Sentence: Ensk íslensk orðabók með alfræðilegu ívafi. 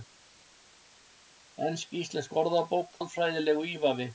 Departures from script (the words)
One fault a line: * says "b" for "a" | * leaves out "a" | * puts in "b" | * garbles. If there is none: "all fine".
* leaves out "með"